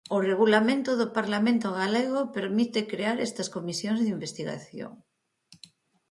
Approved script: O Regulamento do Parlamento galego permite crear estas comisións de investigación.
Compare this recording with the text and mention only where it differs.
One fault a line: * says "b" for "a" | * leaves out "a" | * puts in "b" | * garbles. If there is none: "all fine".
all fine